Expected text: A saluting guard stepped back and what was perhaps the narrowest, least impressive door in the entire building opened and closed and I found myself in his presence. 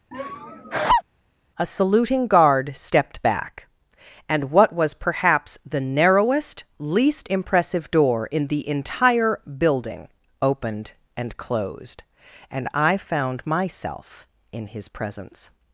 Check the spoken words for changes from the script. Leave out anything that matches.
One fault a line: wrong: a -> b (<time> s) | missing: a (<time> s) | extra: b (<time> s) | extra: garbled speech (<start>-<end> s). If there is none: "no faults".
no faults